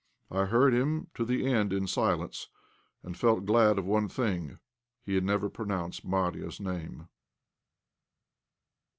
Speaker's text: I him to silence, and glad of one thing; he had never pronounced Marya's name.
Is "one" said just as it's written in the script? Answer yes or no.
yes